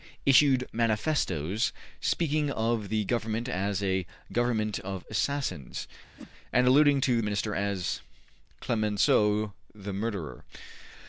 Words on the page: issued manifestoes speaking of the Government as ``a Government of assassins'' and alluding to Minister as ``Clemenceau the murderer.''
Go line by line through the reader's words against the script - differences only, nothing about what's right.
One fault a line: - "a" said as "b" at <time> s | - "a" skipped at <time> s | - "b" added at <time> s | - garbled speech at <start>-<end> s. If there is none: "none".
none